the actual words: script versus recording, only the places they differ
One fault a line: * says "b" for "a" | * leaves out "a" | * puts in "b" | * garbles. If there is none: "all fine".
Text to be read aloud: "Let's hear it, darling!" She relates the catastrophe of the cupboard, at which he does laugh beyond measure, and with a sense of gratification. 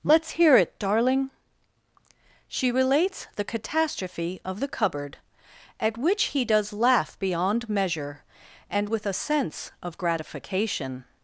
all fine